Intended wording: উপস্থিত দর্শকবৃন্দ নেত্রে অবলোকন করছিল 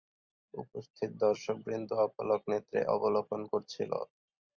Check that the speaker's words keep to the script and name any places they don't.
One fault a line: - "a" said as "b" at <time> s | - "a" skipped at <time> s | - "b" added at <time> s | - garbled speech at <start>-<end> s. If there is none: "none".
- "অপলক" added at 2.0 s